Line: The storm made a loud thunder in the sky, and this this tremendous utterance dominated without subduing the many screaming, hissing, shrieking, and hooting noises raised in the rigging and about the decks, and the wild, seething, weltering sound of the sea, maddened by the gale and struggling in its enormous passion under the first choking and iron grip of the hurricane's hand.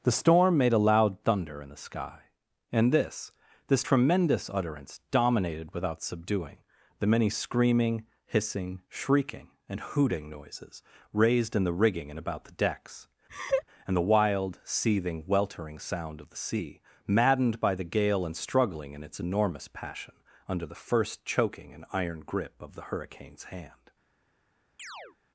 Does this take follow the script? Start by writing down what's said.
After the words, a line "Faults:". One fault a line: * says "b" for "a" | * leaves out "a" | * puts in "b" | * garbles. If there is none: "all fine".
The storm made a loud thunder in the sky, and this this tremendous utterance dominated without subduing the many screaming, hissing, shrieking, and hooting noises raised in the rigging and about the decks, and the wild, seething, weltering sound of the sea, maddened by the gale and struggling in its enormous passion under the first choking and iron grip of the hurricane's hand.
Faults:
all fine